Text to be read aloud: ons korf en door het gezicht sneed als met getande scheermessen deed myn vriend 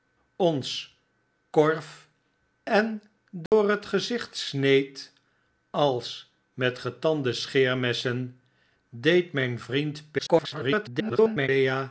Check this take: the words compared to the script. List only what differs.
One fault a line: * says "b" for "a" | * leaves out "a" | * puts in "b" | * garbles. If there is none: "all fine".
* garbles